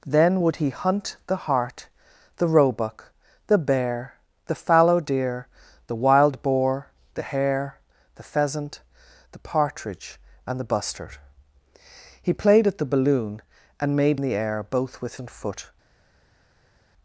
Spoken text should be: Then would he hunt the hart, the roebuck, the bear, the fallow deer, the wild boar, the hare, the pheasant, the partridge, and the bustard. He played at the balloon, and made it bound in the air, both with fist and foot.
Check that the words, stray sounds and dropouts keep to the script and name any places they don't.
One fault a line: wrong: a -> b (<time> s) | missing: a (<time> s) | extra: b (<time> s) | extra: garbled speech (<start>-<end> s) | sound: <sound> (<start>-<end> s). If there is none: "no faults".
missing: it bound in (14.2 s)
missing: fist (15.2 s)